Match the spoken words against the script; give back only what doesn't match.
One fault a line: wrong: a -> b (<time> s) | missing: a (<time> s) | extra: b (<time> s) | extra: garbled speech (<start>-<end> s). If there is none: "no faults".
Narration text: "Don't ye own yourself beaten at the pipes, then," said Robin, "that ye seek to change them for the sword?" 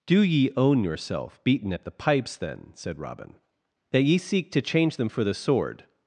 wrong: Don't -> Do (0.1 s)